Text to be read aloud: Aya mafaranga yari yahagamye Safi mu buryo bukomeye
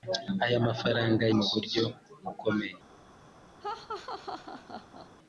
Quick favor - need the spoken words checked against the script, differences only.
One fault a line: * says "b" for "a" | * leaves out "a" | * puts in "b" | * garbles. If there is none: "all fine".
* leaves out "yari yahagamye Safi"